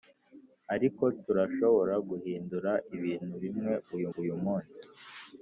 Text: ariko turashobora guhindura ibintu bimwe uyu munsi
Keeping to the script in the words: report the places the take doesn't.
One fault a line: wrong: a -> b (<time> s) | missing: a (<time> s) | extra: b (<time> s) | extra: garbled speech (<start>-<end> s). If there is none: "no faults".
extra: uyu (4.2 s)